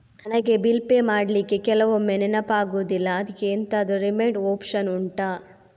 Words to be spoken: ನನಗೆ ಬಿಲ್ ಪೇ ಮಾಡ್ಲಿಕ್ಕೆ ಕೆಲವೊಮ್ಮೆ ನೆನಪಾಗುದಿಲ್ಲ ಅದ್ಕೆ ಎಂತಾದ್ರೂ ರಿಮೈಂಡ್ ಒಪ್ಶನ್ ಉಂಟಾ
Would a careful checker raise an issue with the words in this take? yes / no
no